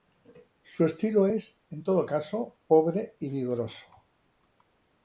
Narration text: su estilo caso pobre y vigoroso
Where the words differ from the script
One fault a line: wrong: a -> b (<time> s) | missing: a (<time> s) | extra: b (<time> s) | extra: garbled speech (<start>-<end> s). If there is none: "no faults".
extra: es en todo (1.2 s)